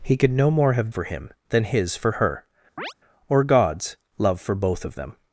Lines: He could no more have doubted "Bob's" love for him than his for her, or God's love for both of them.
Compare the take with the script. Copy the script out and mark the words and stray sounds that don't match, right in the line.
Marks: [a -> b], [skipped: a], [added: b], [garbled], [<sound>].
He could no more have [skipped: doubted "Bob's" love] for him than his for her, [chirp] or God's love for both of them.